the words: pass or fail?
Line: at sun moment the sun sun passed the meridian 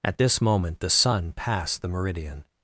fail